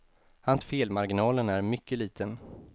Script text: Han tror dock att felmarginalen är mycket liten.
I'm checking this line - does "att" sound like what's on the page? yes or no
no